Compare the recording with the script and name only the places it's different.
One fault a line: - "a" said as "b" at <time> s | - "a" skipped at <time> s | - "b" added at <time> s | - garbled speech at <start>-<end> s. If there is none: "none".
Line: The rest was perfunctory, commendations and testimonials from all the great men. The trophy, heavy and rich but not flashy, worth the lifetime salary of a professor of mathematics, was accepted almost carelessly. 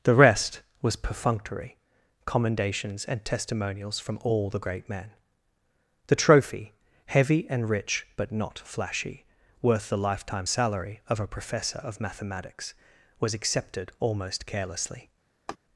none